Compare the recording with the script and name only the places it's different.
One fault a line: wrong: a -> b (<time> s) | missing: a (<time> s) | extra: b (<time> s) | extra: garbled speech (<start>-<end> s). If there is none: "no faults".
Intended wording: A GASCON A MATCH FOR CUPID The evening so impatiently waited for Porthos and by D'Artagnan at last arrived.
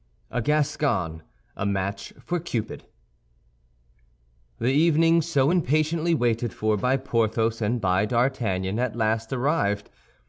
extra: by (6.8 s)